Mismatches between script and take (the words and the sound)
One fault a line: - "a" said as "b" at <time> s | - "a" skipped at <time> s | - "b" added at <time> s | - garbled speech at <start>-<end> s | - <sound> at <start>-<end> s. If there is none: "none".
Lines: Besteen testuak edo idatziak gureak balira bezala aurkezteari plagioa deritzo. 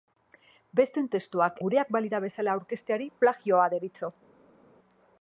- "edo idatziak" skipped at 1.6 s